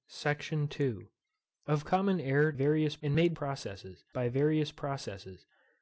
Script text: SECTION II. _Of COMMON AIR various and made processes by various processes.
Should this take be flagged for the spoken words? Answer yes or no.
no